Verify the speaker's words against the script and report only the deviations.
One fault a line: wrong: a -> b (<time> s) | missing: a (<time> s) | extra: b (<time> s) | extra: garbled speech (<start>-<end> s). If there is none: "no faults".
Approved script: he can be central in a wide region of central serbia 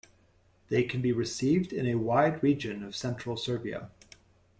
wrong: he -> they (0.7 s)
wrong: central -> received (1.1 s)